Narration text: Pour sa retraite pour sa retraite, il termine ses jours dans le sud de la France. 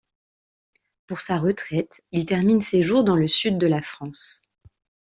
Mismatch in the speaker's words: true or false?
true